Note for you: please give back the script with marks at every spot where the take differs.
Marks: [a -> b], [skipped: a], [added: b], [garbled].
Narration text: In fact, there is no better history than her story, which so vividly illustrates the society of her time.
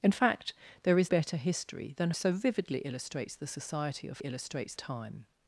In fact, there is [skipped: no] better history than [skipped: her story, which] so vividly illustrates the society of [her -> illustrates] time.